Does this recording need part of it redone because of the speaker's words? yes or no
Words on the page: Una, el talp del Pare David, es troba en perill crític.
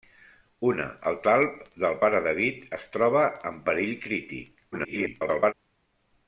yes